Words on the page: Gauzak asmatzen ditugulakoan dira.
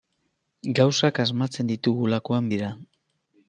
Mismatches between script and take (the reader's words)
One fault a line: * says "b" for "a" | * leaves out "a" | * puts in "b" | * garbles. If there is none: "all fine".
all fine